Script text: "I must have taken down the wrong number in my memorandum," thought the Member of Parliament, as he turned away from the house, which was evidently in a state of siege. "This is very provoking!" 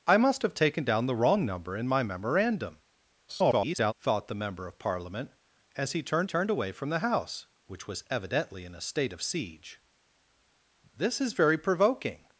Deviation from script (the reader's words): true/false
true